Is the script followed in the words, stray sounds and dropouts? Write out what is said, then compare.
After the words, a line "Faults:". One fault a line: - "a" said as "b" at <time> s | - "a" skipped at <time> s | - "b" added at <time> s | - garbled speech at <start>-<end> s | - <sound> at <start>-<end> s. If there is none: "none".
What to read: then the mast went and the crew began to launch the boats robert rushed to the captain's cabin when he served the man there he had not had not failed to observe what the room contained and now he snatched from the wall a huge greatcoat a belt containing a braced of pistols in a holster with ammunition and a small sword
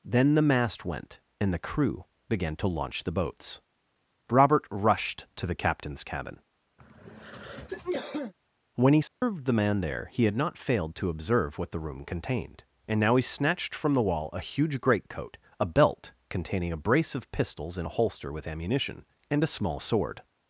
then the mast went and the crew began to launch the boats robert rushed to the captain's cabin when he served the man there he had not failed to observe what the room contained and now he snatched from the wall a huge greatcoat a belt containing a brace of pistols in a holster with ammunition and a small sword
Faults:
- throat clearing at 6.8-8.3 s
- dropout at 9.1-9.2 s
- "had not" skipped at 10.6 s
- "braced" said as "brace" at 16.8 s